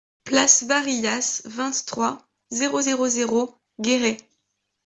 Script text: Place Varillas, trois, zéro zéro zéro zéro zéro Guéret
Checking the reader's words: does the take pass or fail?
fail